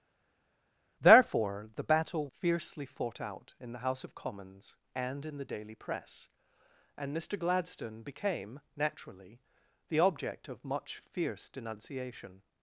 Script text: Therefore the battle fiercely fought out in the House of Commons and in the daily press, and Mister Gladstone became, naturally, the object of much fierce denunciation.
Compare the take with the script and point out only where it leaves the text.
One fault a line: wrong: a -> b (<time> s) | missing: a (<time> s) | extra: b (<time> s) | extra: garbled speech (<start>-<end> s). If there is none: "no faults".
no faults